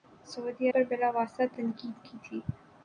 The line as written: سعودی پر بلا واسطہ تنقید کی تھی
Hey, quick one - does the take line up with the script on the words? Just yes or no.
yes